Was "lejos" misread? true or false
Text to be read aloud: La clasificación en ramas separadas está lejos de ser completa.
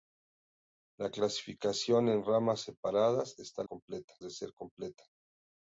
true